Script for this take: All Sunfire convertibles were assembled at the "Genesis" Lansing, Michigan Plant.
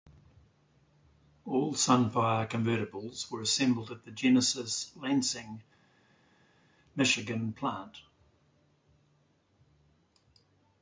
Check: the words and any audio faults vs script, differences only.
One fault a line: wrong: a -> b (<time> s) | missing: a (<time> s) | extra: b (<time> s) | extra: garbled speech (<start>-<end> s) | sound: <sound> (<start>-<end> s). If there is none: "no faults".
no faults